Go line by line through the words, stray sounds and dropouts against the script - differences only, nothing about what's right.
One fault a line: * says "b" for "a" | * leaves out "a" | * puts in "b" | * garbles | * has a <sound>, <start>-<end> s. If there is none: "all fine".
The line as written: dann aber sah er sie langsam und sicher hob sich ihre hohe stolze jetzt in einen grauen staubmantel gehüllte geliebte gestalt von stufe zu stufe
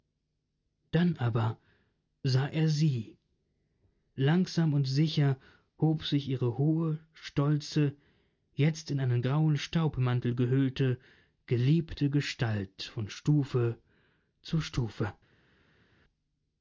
all fine